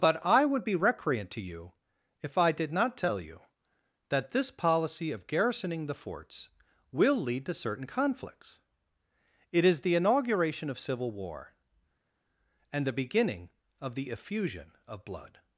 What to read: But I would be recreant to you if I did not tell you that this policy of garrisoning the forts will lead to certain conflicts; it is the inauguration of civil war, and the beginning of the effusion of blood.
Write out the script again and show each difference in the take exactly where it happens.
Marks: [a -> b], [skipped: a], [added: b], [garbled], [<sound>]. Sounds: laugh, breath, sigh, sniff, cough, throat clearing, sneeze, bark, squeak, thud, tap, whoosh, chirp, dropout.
But I would be recreant to you if I did not tell you that this policy of garrisoning the forts will lead to certain conflicts; it is the inauguration of civil war, and the beginning of the effusion of blood.